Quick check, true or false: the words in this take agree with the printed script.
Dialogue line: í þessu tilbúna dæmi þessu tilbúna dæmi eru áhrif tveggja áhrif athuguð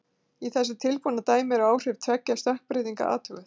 false